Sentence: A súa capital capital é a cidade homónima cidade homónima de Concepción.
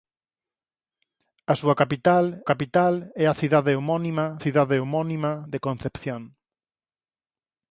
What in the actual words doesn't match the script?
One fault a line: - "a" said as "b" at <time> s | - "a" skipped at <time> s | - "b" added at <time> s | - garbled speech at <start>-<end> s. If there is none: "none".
none